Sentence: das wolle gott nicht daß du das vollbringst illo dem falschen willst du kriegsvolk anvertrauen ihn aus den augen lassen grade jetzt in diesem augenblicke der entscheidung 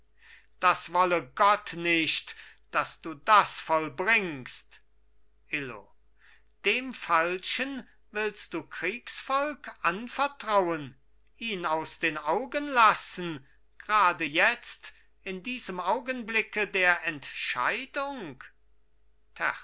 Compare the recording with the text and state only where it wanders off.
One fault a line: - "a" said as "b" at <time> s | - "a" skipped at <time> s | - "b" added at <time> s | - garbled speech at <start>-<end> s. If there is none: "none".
none